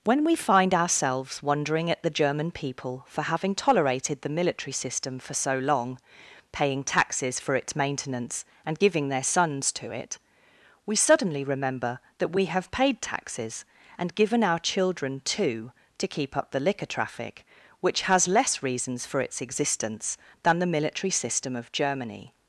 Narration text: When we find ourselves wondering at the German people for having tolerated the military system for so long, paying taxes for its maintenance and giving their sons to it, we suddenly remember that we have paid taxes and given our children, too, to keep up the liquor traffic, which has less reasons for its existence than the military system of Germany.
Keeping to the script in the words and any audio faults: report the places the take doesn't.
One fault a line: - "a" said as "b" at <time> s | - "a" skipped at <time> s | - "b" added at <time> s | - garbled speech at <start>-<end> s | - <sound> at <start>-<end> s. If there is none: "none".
none